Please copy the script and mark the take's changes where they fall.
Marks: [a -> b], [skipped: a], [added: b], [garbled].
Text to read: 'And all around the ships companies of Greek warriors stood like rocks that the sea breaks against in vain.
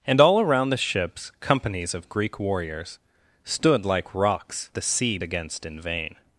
'And all around the ships companies of Greek warriors stood like rocks [skipped: that] the sea [skipped: breaks] against in vain.